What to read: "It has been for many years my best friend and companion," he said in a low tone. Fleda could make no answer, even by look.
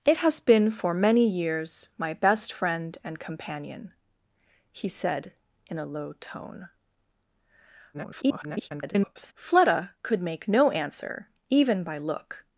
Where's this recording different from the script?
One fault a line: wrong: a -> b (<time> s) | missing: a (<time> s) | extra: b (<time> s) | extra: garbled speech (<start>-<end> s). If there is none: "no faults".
extra: garbled speech (7.9-9.3 s)